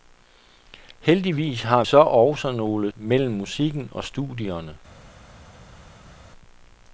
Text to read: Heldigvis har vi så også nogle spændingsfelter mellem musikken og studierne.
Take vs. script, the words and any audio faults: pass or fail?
fail